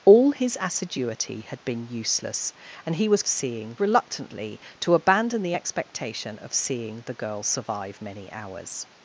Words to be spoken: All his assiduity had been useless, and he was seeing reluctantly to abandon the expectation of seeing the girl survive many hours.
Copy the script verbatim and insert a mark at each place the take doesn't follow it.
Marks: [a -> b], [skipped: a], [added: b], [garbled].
All his assiduity had been useless, and he was seeing reluctantly to abandon the expectation of seeing the girl survive many hours.